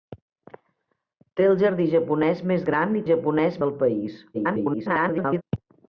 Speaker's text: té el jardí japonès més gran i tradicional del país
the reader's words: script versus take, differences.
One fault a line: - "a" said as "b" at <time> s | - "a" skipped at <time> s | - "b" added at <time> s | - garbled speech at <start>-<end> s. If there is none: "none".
- "tradicional" said as "japonès" at 3.1 s
- garbled speech at 4.3-5.4 s